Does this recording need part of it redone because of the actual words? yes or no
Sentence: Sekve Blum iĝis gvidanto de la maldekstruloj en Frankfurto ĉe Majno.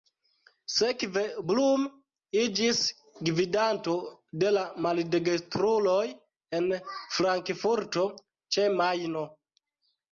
no